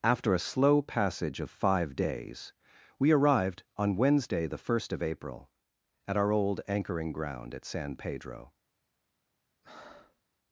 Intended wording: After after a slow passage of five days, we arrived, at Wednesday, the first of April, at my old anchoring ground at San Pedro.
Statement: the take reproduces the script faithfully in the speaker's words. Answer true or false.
false